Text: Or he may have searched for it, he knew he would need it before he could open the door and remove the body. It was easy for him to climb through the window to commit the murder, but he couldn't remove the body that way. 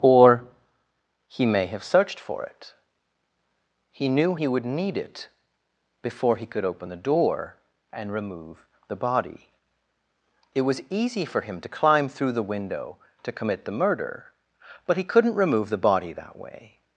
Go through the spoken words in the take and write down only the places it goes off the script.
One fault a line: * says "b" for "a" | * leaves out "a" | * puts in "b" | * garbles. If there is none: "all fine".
all fine